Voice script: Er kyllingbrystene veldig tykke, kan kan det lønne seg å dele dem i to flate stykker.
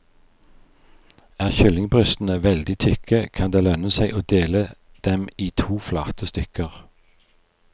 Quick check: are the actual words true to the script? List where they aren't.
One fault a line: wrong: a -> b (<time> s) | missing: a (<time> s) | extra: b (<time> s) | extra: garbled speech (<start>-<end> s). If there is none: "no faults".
missing: kan (3.5 s)